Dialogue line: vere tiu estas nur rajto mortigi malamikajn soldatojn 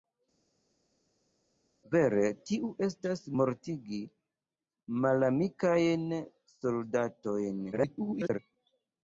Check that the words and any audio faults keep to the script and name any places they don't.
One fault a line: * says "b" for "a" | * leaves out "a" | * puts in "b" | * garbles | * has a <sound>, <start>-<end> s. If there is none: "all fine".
* leaves out "nur rajto"
* garbles